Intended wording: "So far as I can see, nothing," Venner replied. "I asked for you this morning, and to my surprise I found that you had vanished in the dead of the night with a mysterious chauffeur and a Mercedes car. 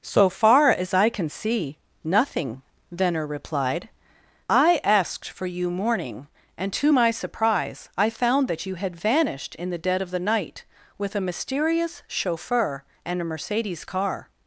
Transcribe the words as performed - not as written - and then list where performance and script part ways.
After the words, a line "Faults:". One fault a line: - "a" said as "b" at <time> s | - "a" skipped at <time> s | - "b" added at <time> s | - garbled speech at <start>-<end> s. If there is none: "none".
"So far as I can see, nothing," Venner replied. "I asked for you morning, and to my surprise I found that you had vanished in the dead of the night with a mysterious chauffeur and a Mercedes car.
Faults:
- "this" skipped at 5.7 s